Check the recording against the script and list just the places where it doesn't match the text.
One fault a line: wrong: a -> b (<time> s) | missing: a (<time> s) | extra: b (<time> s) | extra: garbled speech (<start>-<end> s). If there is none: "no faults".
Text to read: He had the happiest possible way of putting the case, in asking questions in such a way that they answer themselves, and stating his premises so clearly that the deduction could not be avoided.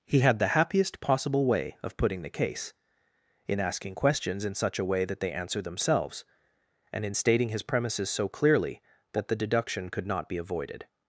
extra: in (7.0 s)